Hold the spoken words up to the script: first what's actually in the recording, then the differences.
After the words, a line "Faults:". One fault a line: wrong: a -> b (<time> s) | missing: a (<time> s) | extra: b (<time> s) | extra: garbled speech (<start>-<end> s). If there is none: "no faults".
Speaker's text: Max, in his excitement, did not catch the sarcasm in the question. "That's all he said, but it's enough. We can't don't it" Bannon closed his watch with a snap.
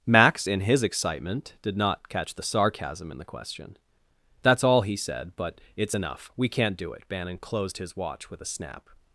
Max, in his excitement, did not catch the sarcasm in the question. "That's all he said, but it's enough. We can't do it" Bannon closed his watch with a snap.
Faults:
wrong: don't -> do (6.8 s)